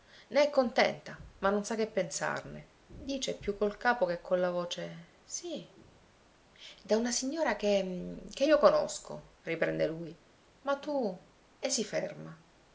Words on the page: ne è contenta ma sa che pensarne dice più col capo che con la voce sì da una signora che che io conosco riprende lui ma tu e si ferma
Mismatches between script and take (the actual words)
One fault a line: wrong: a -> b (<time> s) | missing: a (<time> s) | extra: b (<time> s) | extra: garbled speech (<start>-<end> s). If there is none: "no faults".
extra: non (1.5 s)